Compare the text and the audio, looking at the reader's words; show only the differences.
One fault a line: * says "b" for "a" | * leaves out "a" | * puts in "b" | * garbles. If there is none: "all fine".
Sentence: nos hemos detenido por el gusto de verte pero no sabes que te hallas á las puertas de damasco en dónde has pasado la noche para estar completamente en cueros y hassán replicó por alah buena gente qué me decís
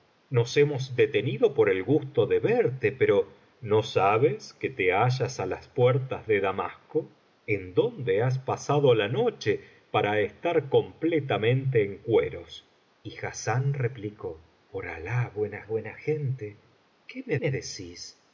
* puts in "buena"
* puts in "me"